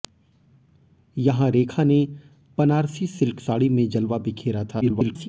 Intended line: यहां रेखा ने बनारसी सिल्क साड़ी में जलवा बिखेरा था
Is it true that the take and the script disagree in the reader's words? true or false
true